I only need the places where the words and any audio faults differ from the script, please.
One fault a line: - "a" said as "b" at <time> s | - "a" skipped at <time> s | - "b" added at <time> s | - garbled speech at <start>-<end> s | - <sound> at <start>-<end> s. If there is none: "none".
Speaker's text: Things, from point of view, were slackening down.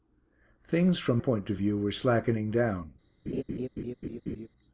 - laugh at 3.3-4.5 s